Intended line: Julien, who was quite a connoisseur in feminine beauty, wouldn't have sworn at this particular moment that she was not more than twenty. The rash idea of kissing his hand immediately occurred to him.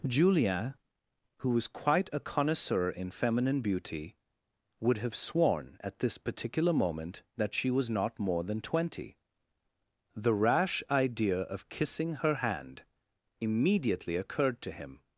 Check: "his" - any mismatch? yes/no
yes